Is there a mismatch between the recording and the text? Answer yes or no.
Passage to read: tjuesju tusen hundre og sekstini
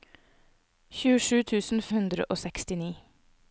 no